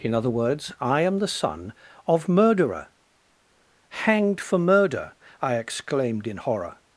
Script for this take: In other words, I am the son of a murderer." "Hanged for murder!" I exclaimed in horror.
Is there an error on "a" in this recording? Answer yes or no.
yes